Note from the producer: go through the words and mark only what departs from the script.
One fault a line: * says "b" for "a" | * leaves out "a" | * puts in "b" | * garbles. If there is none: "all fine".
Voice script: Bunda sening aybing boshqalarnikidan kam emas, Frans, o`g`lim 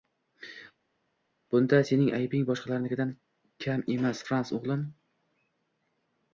all fine